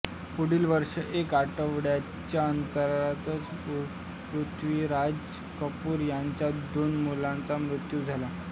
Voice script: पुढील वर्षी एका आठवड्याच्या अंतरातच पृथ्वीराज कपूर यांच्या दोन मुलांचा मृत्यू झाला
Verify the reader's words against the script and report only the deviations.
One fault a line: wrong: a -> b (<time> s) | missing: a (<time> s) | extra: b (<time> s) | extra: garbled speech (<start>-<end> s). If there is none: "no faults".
no faults